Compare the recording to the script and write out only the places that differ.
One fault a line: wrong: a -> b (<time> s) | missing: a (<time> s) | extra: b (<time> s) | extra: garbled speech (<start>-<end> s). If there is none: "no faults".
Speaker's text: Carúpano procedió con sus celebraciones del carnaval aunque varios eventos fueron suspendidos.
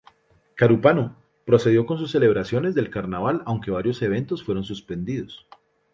no faults